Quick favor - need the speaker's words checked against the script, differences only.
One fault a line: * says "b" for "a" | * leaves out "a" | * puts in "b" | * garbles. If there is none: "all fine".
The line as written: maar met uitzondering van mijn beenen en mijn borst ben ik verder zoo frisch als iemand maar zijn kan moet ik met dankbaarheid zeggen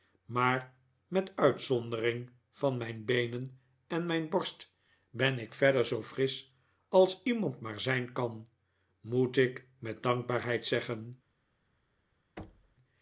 all fine